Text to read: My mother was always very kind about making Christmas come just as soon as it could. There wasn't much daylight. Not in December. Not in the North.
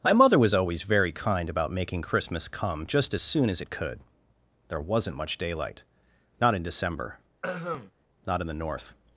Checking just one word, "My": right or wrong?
right